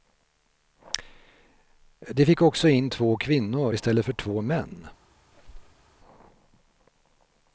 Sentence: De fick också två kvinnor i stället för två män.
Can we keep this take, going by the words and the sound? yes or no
no